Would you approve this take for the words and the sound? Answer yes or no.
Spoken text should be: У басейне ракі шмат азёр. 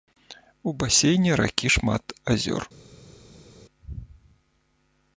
yes